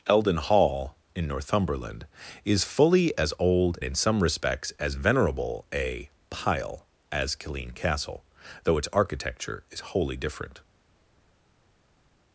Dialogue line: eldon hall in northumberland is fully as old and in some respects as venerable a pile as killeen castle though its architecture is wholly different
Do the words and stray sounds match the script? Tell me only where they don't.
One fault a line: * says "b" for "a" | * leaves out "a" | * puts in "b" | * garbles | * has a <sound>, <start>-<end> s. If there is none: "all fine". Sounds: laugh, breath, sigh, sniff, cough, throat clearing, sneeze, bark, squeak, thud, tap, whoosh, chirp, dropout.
* leaves out "and"